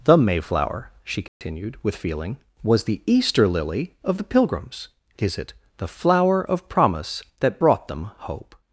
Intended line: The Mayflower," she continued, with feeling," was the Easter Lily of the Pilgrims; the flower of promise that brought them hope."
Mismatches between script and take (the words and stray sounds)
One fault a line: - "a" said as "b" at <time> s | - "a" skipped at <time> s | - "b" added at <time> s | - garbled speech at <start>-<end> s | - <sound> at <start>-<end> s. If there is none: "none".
- dropout at 1.3-1.4 s
- "is it" added at 5.2 s